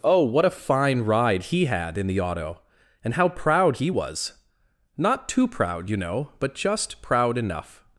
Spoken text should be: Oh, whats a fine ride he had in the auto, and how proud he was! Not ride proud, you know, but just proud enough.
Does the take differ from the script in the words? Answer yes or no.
yes